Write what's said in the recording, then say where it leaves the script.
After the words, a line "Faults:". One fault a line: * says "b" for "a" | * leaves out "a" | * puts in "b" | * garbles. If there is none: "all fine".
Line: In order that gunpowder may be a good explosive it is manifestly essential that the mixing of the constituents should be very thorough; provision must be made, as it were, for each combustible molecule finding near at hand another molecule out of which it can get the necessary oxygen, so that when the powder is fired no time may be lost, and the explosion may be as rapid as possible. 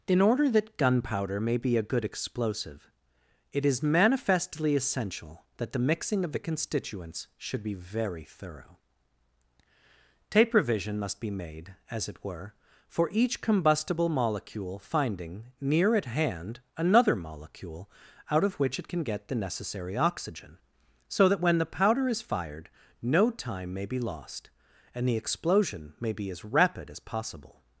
In order that gunpowder may be a good explosive it is manifestly essential that the mixing of the constituents should be very thorough; tape revision must be made, as it were, for each combustible molecule finding near at hand another molecule out of which it can get the necessary oxygen, so that when the powder is fired no time may be lost, and the explosion may be as rapid as possible.
Faults:
* says "tape revision" for "provision"